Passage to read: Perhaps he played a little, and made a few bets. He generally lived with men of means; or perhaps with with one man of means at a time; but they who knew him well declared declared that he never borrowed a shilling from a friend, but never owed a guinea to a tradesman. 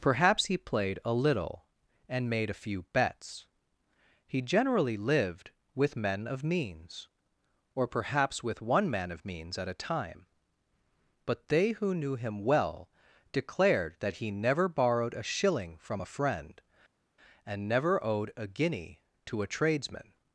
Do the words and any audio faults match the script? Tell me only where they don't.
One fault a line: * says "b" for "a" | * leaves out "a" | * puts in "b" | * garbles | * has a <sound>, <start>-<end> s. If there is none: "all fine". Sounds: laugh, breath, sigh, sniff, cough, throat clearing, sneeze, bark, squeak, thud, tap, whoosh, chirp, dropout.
* leaves out "with"
* leaves out "declared"
* says "and" for "but"